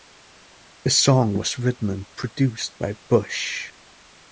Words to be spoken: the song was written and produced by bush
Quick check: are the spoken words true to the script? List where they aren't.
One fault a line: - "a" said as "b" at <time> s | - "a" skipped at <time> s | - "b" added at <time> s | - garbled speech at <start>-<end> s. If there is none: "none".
none